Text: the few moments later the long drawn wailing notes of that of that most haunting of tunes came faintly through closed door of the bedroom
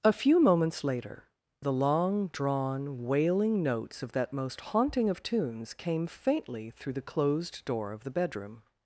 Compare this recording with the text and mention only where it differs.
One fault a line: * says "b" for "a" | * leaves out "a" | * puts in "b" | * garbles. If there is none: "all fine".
* says "a" for "the"
* leaves out "of that"
* puts in "the"